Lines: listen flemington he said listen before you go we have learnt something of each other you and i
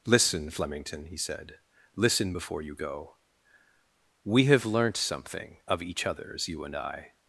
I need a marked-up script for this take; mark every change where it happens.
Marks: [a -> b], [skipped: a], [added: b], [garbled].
listen flemington he said listen before you go we have learnt something of each [other -> others] you and i